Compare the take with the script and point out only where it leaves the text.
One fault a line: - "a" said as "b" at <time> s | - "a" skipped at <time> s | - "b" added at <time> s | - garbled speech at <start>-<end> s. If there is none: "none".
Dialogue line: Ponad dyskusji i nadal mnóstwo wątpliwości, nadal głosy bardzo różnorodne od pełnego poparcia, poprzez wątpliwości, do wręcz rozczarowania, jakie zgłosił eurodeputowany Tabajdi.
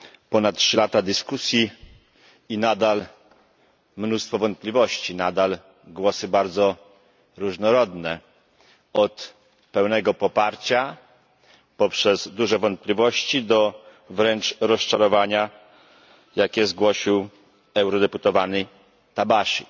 - "trzy lata" added at 0.5 s
- "duże" added at 12.3 s